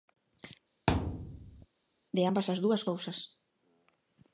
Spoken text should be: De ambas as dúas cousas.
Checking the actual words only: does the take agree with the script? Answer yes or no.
yes